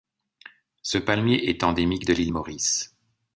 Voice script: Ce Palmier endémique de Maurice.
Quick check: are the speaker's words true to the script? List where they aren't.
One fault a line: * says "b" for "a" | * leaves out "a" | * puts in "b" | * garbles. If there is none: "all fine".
* puts in "est"
* puts in "l'île"